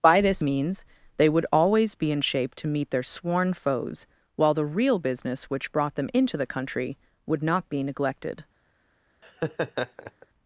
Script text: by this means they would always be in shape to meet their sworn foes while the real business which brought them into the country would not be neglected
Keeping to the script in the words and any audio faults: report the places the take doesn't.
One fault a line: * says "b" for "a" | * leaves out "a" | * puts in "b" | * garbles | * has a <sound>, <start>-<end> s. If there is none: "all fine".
* has a laugh, 9.2-10.3 s